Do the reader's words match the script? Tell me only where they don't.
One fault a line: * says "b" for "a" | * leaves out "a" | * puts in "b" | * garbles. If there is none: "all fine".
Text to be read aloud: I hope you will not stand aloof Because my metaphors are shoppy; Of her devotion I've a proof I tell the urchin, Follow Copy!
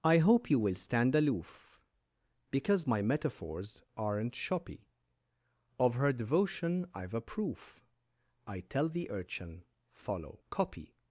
* leaves out "not"
* says "aren't" for "are"